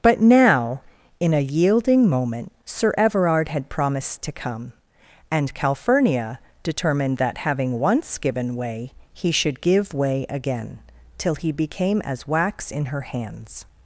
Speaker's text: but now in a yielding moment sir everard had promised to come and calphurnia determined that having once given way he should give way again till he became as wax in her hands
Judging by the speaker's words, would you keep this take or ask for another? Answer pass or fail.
pass